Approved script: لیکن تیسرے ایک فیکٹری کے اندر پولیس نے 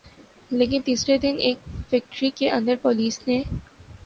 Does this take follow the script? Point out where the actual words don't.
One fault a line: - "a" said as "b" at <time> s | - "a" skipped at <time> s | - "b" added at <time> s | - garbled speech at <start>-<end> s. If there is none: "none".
- "دن" added at 1.2 s